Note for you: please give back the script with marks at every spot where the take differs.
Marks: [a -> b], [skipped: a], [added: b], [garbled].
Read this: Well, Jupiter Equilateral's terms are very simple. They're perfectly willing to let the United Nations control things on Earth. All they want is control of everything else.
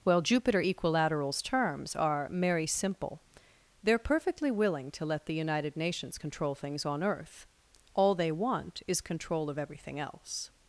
Well, Jupiter Equilateral's terms are [very -> merry] simple. They're perfectly willing to let the United Nations control things on Earth. All they want is control of everything else.